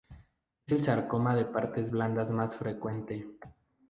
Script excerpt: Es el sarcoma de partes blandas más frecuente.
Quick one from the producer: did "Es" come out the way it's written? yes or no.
yes